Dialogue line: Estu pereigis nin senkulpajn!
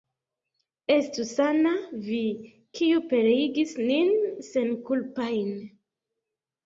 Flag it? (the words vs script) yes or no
yes